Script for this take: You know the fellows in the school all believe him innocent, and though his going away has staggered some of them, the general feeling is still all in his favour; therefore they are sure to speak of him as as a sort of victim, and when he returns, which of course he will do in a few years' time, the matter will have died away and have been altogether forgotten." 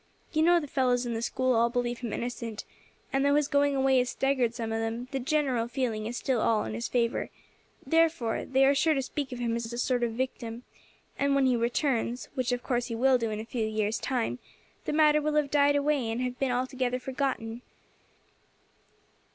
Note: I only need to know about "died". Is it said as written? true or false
true